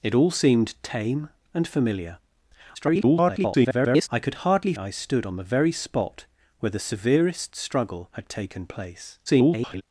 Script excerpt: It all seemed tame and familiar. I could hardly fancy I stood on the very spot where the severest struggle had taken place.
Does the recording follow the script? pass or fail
fail